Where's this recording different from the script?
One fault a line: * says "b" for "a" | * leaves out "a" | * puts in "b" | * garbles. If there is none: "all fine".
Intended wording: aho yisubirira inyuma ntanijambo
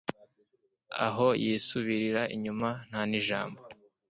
all fine